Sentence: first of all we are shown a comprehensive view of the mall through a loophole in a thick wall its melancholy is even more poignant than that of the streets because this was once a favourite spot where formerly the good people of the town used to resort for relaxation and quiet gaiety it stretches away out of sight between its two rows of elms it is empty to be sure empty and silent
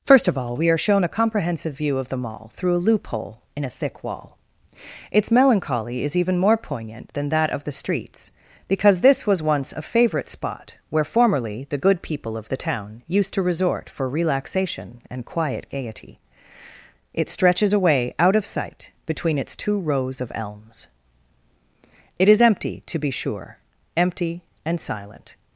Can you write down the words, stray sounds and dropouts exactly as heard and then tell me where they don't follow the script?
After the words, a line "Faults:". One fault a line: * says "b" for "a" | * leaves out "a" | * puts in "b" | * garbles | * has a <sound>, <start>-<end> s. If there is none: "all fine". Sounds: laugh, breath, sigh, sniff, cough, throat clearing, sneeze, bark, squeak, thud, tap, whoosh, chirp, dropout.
first of all we are shown a comprehensive view of the mall through a loophole in a thick wall its melancholy is even more poignant than that of the streets because this was once a favourite spot where formerly the good people of the town used to resort for relaxation and quiet gaiety it stretches away out of sight between its two rows of elms it is empty to be sure empty and silent
Faults:
all fine